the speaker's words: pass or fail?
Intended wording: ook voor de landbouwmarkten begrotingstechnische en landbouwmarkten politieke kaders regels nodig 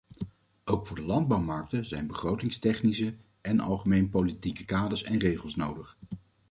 fail